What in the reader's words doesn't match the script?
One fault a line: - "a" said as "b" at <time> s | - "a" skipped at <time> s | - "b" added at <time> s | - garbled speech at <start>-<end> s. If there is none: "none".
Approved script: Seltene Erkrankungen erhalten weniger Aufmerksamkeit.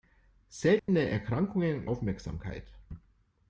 - "erhalten weniger" skipped at 1.9 s